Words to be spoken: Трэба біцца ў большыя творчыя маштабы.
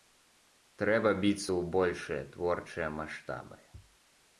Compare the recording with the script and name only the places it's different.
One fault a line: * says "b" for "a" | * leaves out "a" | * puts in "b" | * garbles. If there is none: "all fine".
all fine